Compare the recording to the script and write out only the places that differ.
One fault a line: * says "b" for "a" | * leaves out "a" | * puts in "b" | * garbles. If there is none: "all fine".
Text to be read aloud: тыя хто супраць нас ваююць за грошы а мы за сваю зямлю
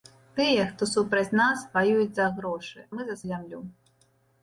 * leaves out "а"
* leaves out "сваю"